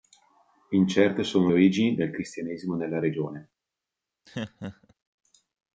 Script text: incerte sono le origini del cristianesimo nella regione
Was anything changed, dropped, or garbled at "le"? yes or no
yes